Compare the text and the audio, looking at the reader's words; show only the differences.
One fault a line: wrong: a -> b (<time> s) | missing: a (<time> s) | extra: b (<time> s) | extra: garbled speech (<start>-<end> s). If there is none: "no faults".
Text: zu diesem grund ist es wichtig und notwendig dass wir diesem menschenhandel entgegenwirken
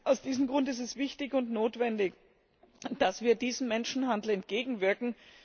wrong: zu -> aus (0.0 s)